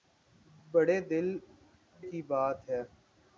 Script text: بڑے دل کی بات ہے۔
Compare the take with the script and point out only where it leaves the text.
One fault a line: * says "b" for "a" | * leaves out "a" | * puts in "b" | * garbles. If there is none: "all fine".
all fine